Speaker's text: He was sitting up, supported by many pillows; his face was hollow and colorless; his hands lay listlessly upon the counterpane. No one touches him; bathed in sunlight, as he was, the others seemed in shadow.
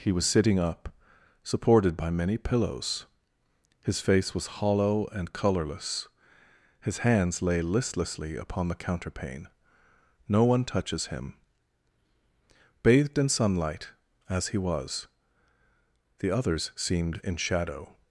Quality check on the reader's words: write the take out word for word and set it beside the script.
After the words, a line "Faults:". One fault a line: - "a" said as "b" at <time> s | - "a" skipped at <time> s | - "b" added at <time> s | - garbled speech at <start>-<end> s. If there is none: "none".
He was sitting up, supported by many pillows; his face was hollow and colorless; his hands lay listlessly upon the counterpane. No one touches him; bathed in sunlight, as he was, the others seemed in shadow.
Faults:
none